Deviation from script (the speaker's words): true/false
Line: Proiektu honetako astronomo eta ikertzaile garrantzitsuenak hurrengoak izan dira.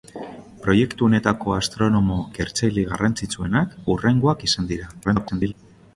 true